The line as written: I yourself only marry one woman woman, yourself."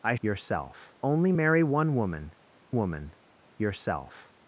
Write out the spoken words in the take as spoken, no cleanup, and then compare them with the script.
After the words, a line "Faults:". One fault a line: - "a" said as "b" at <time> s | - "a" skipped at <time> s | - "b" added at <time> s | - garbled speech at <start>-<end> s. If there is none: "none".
I yourself only marry one woman woman, yourself."
Faults:
none